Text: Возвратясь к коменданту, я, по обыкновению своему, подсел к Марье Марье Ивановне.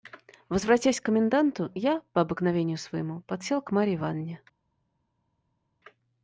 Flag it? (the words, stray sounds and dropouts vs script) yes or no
yes